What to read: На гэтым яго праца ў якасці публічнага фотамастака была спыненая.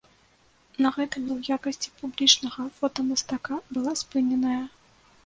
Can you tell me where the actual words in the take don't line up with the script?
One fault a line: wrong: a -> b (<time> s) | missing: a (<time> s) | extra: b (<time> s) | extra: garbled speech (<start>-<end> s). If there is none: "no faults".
missing: яго праца (1.3 s)